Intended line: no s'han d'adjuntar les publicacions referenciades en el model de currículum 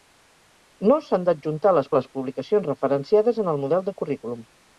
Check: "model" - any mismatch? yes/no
no